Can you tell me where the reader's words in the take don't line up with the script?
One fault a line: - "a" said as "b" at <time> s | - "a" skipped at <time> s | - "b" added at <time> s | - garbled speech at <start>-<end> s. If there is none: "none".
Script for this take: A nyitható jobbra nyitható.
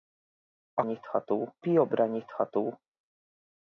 none